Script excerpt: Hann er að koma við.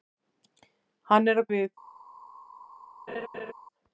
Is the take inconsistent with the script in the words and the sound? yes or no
yes